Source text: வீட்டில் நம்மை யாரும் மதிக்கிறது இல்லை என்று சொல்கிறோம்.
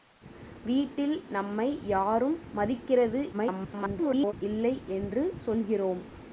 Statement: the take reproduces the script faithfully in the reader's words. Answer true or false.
false